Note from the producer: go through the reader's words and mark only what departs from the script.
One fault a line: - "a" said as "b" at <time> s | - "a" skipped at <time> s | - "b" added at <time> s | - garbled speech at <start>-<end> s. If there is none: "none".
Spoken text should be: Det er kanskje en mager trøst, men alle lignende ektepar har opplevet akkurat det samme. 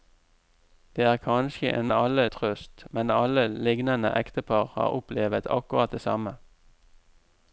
- "mager" said as "alle" at 1.9 s